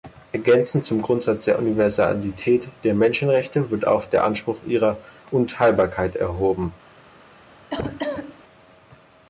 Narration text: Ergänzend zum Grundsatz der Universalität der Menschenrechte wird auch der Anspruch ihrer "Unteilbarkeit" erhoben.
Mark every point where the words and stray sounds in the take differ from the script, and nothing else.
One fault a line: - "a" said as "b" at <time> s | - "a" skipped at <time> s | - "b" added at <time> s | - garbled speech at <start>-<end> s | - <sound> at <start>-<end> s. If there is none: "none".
- cough at 7.7-8.4 s